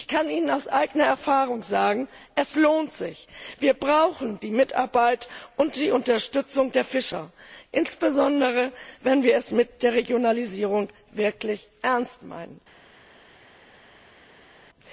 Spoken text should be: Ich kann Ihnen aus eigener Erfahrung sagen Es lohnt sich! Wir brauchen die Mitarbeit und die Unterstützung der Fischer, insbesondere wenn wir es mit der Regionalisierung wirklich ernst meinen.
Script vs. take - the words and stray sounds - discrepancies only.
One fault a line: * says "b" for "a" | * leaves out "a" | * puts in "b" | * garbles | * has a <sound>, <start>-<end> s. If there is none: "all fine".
all fine